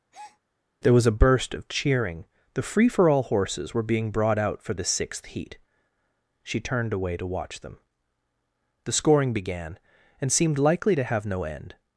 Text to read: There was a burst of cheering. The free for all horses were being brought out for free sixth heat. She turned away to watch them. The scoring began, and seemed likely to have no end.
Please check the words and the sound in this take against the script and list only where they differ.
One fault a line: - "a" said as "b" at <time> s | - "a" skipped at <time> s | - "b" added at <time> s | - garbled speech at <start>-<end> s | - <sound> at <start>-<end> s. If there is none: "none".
- breath at 0.1-0.4 s
- "free" said as "the" at 4.7 s